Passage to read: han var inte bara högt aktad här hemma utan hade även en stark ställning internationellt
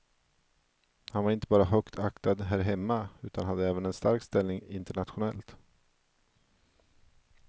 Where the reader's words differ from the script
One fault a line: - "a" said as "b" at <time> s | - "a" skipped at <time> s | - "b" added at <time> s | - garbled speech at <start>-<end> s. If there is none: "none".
none